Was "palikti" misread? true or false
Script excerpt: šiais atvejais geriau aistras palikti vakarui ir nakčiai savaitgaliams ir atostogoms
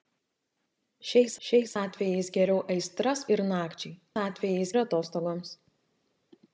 true